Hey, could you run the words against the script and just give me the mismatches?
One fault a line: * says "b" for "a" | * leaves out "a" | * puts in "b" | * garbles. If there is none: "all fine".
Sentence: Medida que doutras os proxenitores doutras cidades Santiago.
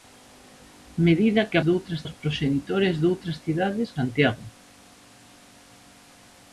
all fine